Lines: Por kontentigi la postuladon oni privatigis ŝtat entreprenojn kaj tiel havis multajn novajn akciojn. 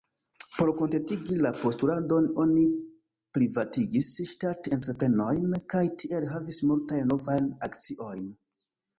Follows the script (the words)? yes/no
yes